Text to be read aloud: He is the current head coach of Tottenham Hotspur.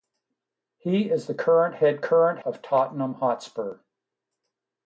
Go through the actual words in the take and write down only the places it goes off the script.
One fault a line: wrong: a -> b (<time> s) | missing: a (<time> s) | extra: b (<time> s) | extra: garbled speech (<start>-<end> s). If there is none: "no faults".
wrong: coach -> current (2.0 s)